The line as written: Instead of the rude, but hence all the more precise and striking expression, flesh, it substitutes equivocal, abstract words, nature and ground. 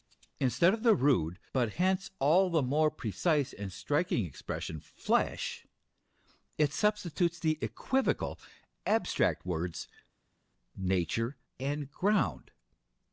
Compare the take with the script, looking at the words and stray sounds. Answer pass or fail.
fail